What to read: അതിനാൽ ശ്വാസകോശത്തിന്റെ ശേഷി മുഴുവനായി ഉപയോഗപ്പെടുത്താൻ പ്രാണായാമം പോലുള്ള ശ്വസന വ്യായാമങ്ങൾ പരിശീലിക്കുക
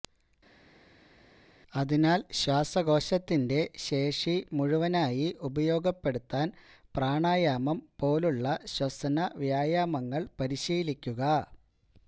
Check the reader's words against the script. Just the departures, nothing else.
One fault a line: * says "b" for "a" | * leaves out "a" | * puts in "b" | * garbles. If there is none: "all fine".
all fine